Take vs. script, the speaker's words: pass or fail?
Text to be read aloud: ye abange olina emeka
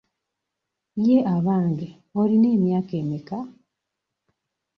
fail